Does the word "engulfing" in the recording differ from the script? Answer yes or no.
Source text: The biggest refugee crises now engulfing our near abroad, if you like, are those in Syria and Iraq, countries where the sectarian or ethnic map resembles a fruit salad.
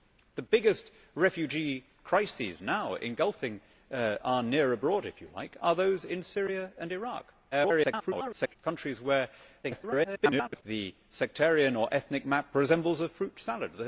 no